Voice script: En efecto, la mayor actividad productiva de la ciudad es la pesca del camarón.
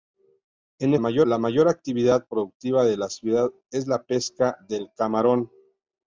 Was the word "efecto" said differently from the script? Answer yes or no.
yes